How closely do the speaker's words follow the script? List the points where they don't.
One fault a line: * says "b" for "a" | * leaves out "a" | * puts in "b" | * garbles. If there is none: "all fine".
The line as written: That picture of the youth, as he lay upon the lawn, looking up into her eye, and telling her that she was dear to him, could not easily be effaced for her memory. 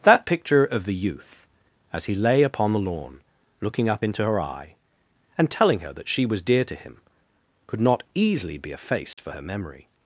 all fine